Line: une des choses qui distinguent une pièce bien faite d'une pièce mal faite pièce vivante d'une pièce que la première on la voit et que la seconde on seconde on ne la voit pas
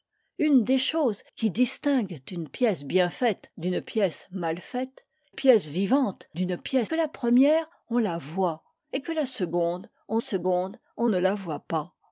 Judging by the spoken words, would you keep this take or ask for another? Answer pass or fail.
pass